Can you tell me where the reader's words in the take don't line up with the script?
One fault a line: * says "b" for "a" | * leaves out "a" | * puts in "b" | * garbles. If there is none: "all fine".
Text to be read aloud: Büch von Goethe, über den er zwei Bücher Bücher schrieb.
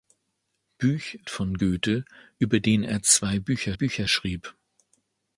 all fine